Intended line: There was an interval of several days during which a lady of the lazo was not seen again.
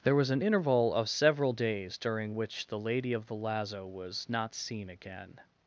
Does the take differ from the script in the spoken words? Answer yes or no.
yes